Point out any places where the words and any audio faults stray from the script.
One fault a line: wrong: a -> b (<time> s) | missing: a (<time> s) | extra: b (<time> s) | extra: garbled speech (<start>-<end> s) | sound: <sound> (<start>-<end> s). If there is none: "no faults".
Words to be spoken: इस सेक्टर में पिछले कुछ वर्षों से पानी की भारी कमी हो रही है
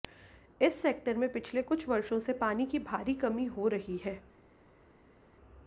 no faults